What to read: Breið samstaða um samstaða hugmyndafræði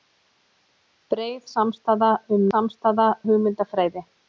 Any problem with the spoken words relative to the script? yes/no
no